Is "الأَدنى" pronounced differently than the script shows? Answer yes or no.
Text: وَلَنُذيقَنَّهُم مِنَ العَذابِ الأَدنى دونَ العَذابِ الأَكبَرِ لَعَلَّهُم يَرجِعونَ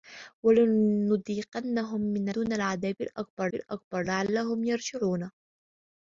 yes